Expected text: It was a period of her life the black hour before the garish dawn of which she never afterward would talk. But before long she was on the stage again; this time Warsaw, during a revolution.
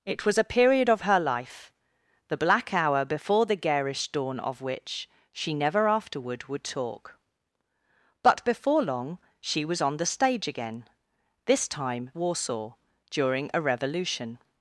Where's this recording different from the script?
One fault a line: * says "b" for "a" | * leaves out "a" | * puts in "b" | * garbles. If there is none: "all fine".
all fine